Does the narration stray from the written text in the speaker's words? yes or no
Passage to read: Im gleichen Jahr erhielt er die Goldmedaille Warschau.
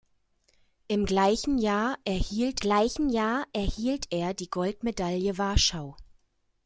yes